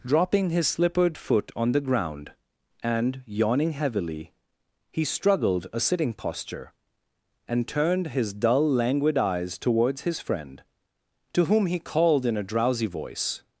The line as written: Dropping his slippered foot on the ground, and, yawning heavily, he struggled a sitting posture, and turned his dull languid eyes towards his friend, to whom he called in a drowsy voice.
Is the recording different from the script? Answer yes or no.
no